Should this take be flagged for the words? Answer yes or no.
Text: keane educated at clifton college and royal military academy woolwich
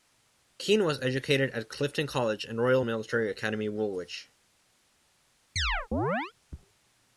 yes